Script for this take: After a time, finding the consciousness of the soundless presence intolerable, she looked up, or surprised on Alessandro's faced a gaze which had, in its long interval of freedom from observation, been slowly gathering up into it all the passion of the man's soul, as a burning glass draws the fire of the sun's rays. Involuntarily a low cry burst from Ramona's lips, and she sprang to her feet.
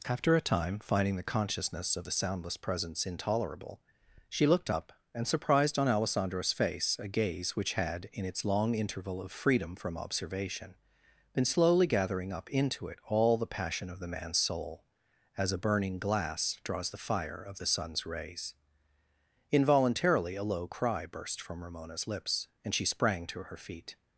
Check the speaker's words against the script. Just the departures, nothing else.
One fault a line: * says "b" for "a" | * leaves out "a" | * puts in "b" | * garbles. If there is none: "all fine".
* says "and" for "or"
* says "face" for "faced"